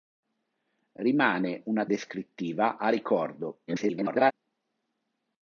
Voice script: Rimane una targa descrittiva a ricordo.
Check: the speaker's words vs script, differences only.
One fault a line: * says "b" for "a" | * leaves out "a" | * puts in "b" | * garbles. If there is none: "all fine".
* leaves out "targa"
* garbles